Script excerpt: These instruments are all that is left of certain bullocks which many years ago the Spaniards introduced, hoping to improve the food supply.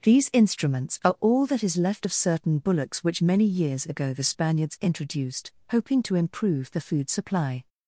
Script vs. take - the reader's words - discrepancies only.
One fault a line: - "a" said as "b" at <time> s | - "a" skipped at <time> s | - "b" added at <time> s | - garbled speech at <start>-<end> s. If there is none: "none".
none